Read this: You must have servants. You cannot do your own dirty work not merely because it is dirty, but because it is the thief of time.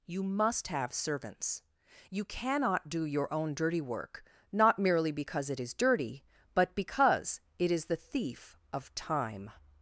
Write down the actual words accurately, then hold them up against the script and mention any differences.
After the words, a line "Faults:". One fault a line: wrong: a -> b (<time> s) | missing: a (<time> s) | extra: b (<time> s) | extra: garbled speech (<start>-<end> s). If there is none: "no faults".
You must have servants. You cannot do your own dirty work not merely because it is dirty, but because it is the thief of time.
Faults:
no faults